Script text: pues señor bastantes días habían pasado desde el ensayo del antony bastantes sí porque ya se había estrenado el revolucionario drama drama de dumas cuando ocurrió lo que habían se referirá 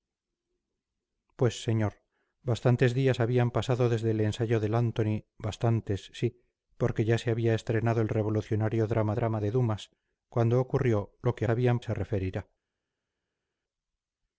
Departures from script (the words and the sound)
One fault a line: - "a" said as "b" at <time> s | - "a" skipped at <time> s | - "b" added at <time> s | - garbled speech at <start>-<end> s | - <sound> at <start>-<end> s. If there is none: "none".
none